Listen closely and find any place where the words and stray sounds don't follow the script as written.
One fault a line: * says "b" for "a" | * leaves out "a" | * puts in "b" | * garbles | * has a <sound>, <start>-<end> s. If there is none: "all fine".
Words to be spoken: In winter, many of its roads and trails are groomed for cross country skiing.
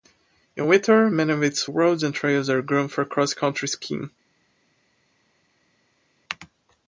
all fine